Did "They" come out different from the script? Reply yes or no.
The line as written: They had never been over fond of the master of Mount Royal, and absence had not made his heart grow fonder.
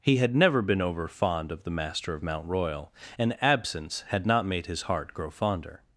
yes